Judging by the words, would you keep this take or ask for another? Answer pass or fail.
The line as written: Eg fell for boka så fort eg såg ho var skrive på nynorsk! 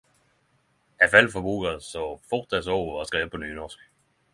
pass